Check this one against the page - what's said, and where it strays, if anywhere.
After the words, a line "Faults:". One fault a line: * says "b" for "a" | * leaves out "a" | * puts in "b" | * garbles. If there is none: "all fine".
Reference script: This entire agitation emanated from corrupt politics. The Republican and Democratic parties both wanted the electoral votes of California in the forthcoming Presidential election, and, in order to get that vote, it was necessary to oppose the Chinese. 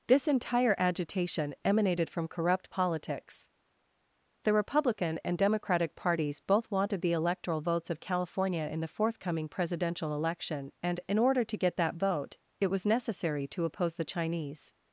This entire agitation emanated from corrupt politics. The Republican and Democratic parties both wanted the electoral votes of California in the forthcoming Presidential election, and, in order to get that vote, it was necessary to oppose the Chinese.
Faults:
all fine